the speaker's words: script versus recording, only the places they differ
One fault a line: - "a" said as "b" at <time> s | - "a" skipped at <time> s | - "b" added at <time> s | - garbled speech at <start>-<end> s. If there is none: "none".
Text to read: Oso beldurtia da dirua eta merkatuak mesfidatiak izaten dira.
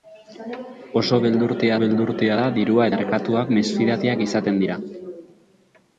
- "beldurtia" added at 1.8 s
- "eta" skipped at 2.9 s